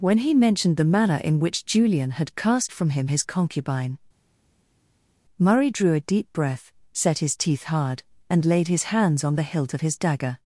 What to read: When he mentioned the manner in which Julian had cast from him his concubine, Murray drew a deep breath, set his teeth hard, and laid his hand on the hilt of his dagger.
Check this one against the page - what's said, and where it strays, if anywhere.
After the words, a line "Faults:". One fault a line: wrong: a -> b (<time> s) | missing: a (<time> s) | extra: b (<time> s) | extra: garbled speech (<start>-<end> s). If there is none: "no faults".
When he mentioned the manner in which Julian had cast from him his concubine, Murray drew a deep breath, set his teeth hard, and laid his hands on the hilt of his dagger.
Faults:
wrong: hand -> hands (8.9 s)